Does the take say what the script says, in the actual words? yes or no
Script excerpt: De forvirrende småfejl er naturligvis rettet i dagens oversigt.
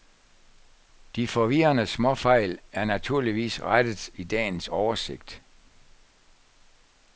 yes